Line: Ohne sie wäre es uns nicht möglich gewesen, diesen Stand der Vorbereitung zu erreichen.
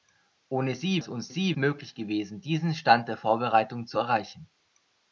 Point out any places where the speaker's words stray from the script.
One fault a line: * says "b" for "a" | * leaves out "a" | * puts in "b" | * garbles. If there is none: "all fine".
* leaves out "wäre"
* says "sie" for "nicht"